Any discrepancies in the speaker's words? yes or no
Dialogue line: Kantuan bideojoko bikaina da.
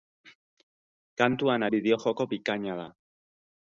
no